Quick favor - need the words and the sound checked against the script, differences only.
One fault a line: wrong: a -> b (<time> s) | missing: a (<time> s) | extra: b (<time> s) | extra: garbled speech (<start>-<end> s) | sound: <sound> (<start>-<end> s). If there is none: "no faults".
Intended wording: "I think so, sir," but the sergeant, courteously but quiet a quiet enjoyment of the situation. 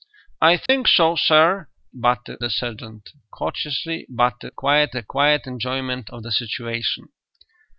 sound: dropout (0.7-0.7 s)